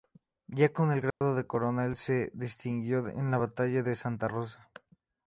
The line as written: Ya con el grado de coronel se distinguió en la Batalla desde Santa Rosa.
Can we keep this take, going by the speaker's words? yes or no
no